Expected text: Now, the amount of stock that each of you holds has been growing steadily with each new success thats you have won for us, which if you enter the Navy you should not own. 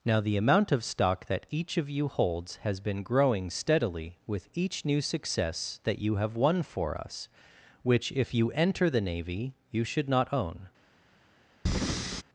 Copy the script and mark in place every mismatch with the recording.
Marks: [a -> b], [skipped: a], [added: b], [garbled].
Now, the amount of stock that each of you holds has been growing steadily with each new success [thats -> that] you have won for us, which if you enter the Navy you should not own.